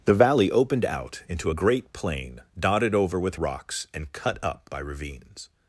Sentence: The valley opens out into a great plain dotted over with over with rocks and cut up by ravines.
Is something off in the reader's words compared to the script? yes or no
yes